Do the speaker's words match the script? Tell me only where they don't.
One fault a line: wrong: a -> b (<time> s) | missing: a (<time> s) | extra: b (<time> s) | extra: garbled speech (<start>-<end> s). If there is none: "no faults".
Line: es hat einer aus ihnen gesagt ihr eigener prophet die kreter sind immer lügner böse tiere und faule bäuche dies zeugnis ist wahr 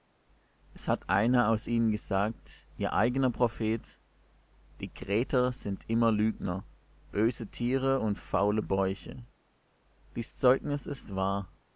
no faults